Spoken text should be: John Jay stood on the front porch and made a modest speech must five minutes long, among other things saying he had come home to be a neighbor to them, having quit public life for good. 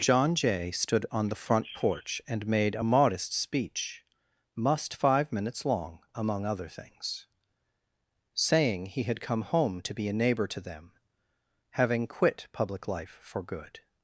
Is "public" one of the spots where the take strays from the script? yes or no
no